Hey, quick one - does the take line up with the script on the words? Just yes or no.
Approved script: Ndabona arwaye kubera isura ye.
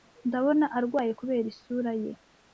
yes